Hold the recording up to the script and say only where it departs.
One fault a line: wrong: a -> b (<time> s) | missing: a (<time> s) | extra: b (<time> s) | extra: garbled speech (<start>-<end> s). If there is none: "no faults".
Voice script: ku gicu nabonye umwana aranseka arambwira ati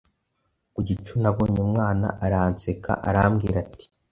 no faults